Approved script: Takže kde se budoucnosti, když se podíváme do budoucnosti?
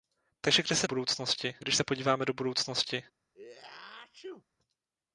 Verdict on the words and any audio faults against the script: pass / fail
fail